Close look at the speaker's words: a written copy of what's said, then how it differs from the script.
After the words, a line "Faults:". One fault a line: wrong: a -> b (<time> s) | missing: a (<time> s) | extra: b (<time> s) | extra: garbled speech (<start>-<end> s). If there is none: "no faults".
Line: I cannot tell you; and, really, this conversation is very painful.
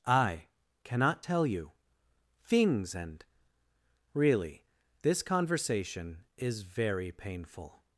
I cannot tell you; things and, really, this conversation is very painful.
Faults:
extra: things (2.4 s)